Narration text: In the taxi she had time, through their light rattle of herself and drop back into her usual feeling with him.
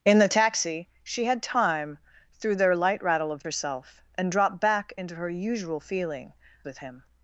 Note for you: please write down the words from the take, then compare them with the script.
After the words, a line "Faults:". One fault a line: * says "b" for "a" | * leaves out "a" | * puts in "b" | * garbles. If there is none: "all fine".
In the taxi she had time, through their light rattle of herself and drop back into her usual feeling with him.
Faults:
all fine